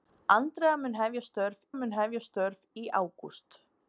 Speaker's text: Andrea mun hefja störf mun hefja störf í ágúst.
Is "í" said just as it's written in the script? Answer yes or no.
yes